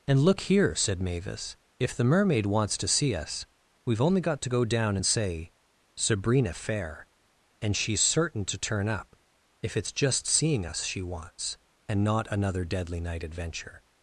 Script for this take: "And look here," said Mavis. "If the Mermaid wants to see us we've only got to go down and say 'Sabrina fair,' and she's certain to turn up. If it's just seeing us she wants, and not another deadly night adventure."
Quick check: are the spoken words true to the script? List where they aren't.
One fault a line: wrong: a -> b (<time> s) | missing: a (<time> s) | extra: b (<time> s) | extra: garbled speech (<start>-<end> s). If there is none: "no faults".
no faults